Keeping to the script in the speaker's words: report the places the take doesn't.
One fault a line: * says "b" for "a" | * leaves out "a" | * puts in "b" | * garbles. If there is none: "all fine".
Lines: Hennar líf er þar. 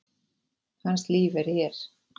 * says "Hans" for "Hennar"
* says "hér" for "þar"